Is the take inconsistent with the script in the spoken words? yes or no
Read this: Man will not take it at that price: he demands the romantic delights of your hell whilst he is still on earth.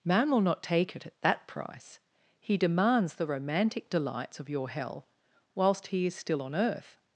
no